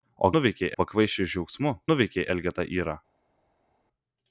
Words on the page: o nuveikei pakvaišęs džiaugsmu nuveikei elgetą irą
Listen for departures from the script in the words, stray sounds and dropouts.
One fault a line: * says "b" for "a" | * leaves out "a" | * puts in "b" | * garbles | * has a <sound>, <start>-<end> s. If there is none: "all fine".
all fine